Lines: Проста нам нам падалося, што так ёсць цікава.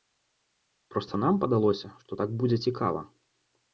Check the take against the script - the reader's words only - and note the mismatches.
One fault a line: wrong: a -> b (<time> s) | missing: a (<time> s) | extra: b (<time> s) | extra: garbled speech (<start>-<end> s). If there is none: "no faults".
missing: нам (1.4 s)
wrong: ёсць -> будзе (2.4 s)